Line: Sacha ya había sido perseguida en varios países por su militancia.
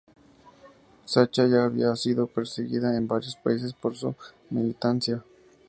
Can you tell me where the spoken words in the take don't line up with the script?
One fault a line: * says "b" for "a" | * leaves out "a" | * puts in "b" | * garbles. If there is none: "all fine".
all fine